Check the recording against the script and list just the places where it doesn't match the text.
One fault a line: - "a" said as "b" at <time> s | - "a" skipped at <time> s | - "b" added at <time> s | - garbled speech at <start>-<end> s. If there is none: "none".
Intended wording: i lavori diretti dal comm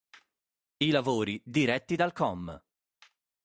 none